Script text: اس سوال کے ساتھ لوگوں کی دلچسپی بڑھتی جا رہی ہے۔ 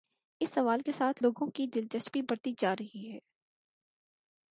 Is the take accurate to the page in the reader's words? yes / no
yes